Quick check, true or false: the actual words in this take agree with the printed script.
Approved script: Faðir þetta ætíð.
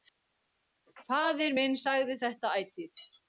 false